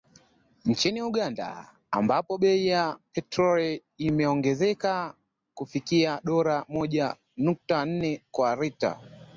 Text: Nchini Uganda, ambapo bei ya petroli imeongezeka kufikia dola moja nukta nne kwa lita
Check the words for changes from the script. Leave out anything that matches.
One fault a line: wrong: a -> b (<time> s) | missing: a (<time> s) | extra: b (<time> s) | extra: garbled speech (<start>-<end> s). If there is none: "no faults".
no faults